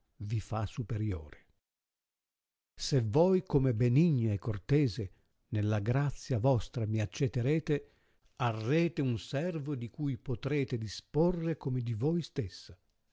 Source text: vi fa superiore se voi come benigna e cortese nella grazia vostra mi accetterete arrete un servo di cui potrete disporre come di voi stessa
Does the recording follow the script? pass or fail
pass